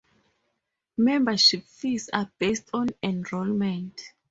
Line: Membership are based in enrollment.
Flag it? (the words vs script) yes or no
yes